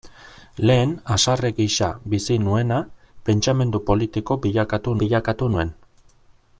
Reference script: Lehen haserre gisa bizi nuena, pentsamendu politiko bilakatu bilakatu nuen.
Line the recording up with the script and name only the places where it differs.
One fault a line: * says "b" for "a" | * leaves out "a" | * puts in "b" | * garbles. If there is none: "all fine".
all fine